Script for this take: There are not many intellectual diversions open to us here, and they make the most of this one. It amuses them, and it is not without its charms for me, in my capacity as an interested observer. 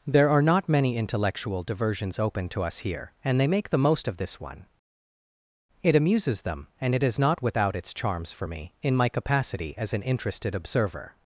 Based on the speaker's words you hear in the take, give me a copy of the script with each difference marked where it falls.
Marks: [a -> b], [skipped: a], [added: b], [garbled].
There are not many intellectual diversions open to us here, and they make the most of this one. It amuses them, and it is not without its charms for me, in my capacity as an interested observer.